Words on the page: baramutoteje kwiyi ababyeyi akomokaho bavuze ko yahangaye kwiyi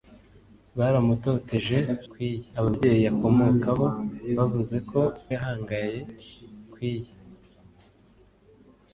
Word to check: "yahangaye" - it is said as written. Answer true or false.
true